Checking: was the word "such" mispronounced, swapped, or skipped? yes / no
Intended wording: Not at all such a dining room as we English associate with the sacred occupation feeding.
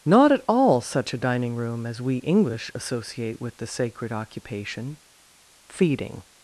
no